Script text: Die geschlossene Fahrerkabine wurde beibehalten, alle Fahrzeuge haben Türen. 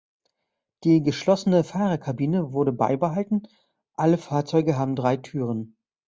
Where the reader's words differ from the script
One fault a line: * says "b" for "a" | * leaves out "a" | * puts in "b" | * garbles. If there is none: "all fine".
* puts in "drei"